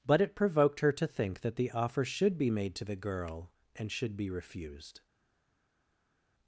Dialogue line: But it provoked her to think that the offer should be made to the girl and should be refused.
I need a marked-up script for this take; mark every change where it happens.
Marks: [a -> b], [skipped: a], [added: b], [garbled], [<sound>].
But it provoked her to think that the offer should be made to the girl and should be refused.